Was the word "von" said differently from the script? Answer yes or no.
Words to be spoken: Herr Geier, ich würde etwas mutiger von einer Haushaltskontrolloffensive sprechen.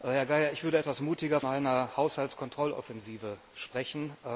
yes